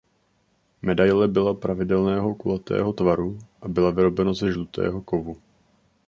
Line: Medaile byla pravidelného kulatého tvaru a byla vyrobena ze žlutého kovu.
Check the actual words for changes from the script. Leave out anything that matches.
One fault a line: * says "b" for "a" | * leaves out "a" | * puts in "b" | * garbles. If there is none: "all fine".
all fine